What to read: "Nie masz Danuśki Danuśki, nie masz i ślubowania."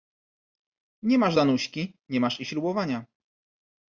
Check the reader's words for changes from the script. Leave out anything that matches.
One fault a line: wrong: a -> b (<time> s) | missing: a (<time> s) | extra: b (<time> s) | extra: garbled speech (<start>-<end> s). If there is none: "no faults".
missing: Danuśki (2.0 s)